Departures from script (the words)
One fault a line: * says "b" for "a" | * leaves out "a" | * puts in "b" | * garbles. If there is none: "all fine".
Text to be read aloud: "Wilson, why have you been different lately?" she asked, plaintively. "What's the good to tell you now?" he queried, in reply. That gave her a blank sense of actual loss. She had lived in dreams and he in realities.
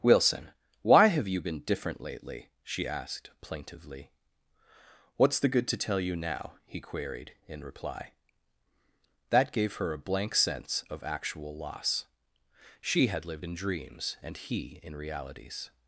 all fine